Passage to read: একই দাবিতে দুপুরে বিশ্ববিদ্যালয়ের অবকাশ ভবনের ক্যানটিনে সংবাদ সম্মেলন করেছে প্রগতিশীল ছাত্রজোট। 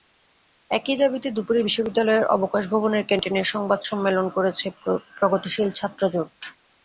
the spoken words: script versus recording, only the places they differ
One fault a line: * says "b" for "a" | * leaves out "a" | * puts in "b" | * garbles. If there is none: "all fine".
all fine